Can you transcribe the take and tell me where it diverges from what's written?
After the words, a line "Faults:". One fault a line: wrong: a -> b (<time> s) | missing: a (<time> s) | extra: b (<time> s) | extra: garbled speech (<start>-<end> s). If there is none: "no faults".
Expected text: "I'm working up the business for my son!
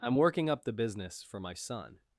"I'm working up the business for my son!
Faults:
no faults